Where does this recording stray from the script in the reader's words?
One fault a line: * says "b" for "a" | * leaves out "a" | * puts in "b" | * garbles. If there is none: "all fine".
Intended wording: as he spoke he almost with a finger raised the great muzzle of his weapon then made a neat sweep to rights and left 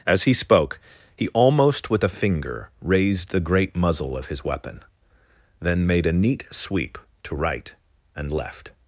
* says "right" for "rights"